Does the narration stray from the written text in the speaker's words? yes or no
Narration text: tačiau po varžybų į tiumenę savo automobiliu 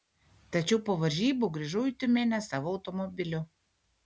yes